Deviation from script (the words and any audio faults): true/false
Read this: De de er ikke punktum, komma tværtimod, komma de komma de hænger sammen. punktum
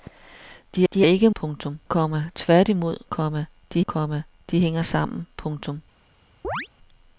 true